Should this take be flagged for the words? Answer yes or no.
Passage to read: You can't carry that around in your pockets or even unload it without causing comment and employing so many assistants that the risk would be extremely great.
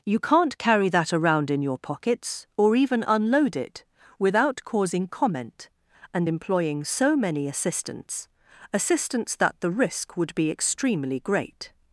yes